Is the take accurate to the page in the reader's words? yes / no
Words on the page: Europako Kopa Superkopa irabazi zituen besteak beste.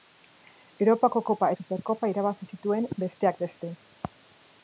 yes